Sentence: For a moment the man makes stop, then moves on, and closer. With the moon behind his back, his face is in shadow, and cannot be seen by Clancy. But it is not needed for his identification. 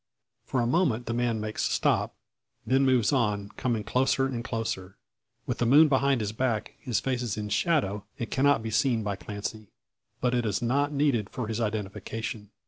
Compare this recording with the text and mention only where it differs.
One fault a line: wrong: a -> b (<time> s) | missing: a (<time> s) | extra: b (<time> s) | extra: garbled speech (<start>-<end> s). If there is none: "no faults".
extra: coming closer (3.6 s)